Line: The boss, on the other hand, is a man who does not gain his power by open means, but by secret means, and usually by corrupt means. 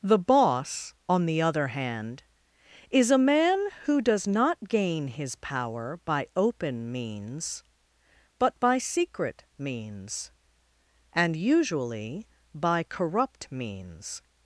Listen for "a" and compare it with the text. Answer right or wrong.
right